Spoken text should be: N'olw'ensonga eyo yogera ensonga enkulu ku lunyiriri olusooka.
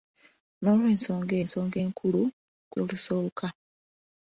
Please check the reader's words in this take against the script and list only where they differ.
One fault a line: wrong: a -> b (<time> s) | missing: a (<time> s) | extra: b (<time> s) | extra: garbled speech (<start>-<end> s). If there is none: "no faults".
missing: eyo yogera (1.4 s)
missing: lunyiriri (2.8 s)